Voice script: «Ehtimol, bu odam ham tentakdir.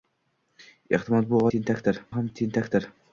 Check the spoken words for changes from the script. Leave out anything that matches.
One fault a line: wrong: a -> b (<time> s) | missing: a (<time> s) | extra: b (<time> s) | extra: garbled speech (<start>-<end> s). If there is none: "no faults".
wrong: odam -> tentakdir (1.5 s)